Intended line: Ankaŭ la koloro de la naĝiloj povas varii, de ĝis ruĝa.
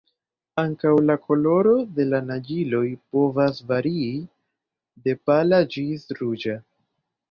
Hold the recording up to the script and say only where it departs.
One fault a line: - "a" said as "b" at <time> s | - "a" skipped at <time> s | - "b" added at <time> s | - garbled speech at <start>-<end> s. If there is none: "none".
- "pala" added at 5.3 s